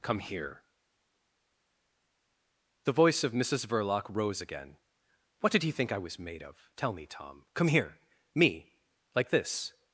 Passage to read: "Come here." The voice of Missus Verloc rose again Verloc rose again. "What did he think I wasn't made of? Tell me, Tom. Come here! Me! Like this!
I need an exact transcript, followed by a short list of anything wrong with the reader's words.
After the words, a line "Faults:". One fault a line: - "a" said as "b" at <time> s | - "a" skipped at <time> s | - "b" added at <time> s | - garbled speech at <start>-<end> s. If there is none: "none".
"Come here." The voice of Missus Verloc rose again. "What did he think I was made of? Tell me, Tom. Come here! Me! Like this!
Faults:
- "Verloc rose again" skipped at 4.8 s
- "wasn't" said as "was" at 6.0 s